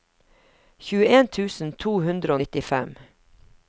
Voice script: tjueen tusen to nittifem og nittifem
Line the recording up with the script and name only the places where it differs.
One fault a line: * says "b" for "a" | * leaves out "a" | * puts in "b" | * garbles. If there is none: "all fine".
* says "hundre" for "nittifem"